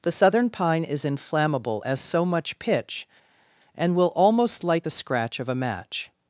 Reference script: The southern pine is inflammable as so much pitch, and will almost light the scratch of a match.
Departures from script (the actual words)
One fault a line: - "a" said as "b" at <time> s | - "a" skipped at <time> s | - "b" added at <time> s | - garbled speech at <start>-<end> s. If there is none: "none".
none